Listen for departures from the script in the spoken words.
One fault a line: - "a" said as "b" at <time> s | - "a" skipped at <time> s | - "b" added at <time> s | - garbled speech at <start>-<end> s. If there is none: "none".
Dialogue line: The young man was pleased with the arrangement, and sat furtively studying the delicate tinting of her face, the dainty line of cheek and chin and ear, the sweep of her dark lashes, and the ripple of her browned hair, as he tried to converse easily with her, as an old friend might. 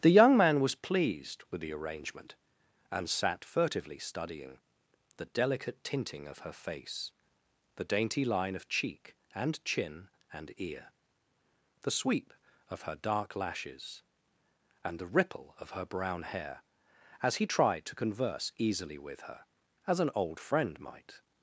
- "browned" said as "brown" at 15.8 s